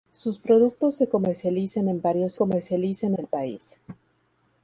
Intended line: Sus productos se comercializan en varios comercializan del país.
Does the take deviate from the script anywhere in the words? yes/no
no